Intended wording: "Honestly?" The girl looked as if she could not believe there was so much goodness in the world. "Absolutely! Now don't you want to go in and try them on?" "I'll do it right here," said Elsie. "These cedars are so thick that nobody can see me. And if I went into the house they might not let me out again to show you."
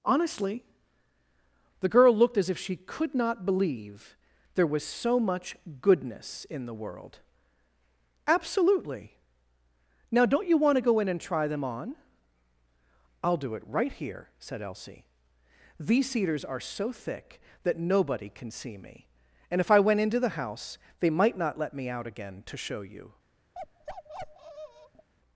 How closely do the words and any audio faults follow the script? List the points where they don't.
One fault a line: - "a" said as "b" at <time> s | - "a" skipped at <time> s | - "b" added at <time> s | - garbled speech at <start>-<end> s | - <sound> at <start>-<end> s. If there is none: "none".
- bark at 23.5-25.1 s